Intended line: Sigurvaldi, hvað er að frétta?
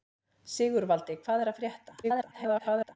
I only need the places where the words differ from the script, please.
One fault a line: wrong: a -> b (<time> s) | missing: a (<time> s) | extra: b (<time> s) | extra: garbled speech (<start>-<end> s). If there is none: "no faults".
extra: garbled speech (2.0-3.0 s)